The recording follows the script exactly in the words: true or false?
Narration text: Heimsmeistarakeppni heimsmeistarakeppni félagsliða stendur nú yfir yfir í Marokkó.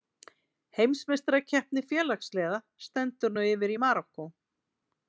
false